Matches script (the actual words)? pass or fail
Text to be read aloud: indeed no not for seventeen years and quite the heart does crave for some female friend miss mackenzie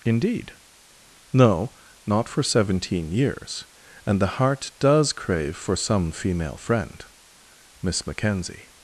fail